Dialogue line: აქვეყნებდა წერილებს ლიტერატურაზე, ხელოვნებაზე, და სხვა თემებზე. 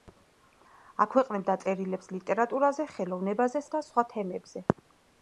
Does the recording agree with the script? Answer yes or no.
yes